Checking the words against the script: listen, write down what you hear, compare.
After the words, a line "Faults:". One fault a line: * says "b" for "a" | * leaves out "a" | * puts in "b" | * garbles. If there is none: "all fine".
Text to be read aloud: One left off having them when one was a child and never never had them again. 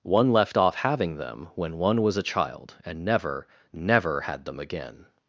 One left off having them when one was a child and never never had them again.
Faults:
all fine